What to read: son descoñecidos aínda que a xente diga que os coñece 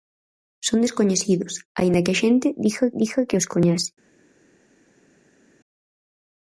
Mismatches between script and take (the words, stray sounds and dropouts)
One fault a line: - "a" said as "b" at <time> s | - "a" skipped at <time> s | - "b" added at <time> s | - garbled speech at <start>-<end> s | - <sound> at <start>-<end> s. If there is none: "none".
- "diga" added at 3.0 s